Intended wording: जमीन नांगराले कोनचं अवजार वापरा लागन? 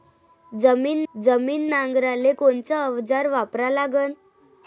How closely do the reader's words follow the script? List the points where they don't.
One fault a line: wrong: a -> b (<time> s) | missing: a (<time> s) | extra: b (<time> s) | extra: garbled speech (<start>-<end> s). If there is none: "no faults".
extra: जमीन (1.1 s)